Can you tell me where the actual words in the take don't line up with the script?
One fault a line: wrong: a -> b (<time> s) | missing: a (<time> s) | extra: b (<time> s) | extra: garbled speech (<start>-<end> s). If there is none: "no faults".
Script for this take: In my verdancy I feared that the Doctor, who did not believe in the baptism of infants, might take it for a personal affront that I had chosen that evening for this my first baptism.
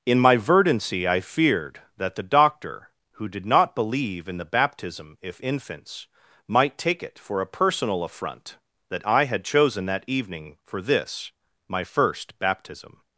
wrong: of -> if (5.2 s)